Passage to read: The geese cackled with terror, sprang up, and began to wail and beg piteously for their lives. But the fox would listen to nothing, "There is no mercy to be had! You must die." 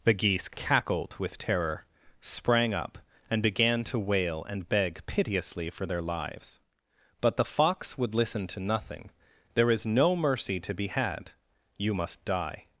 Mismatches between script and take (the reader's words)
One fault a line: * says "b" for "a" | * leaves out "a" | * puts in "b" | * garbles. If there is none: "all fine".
all fine